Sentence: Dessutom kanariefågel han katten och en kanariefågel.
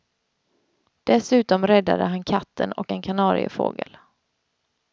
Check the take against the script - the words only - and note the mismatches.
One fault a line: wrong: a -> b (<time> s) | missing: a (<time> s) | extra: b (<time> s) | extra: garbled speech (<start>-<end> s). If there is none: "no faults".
wrong: kanariefågel -> räddade (1.7 s)